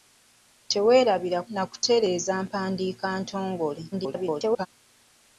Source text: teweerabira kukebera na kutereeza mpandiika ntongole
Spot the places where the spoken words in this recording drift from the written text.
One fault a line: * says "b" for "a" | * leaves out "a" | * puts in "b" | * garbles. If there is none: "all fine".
* leaves out "kukebera"
* garbles